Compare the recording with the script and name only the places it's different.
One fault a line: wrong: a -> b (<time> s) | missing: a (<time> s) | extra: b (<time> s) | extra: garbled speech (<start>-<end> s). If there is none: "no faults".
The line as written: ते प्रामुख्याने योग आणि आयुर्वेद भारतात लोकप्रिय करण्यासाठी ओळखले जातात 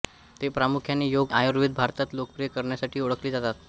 missing: आणि (1.3 s)